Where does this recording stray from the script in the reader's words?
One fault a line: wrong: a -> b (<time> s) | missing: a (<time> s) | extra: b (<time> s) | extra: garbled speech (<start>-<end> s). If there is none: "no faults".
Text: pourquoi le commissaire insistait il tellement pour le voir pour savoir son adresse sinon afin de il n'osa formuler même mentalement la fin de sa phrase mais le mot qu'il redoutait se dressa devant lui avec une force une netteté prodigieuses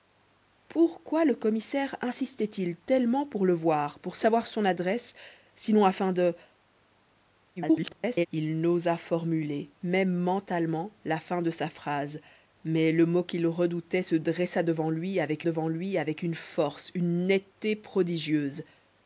extra: garbled speech (7.6-8.3 s)
extra: devant lui avec (15.4 s)